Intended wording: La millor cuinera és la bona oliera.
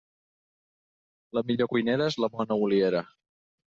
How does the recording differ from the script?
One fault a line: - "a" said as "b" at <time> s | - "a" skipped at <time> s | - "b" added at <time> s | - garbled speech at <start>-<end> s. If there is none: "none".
none